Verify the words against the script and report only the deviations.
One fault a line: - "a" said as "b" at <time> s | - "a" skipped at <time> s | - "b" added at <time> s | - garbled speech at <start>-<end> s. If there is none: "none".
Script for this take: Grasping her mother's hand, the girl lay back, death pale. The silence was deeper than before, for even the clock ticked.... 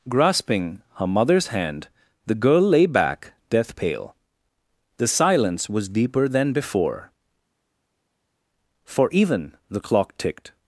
none